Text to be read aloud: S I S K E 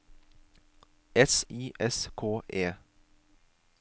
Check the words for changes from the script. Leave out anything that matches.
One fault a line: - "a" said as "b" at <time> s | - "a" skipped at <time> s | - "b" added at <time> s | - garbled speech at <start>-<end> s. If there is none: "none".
none